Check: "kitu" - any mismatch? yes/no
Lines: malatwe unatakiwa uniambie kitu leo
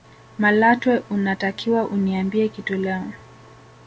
no